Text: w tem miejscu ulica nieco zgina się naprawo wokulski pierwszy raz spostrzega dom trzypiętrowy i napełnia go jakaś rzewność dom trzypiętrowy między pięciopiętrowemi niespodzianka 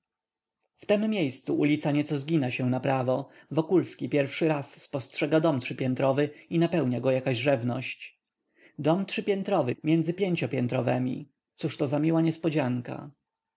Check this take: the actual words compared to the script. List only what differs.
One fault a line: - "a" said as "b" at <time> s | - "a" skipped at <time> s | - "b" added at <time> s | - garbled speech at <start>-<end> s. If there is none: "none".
- "cóżto za miła" added at 11.6 s